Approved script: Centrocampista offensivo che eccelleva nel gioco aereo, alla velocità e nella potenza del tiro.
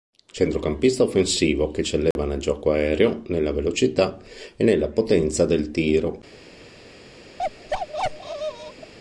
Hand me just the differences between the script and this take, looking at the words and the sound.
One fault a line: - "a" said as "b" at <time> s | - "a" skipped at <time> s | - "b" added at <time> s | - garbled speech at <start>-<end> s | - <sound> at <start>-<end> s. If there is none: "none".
- dropout at 2.1-2.2 s
- "alla" said as "nella" at 3.3 s
- bark at 7.4-8.9 s